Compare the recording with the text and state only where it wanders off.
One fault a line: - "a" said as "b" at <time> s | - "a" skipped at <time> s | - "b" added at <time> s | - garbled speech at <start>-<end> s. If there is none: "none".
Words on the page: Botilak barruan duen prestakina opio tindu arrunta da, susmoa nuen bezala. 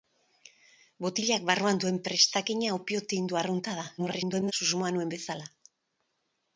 - garbled speech at 4.0-4.5 s